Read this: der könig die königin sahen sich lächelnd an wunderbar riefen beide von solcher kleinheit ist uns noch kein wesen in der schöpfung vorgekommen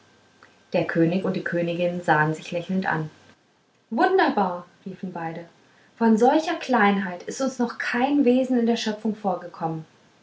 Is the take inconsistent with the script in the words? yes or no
yes